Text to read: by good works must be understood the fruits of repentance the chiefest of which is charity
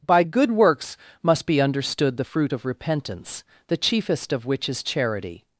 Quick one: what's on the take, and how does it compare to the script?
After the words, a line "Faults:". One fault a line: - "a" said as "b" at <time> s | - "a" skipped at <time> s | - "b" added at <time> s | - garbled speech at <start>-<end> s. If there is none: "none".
by good works must be understood the fruit of repentance the chiefest of which is charity
Faults:
- "fruits" said as "fruit" at 2.2 s